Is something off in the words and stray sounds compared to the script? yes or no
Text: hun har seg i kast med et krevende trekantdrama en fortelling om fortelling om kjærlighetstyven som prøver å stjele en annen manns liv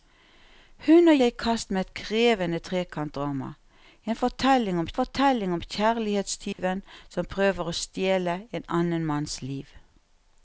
yes